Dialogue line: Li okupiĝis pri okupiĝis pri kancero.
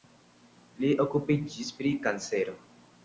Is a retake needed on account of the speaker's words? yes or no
yes